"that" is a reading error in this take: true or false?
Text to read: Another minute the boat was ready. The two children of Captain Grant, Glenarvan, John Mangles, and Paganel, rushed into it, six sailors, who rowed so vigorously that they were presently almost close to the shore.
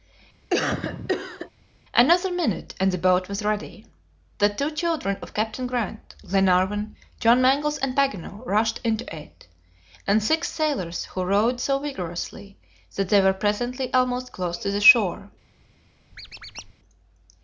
false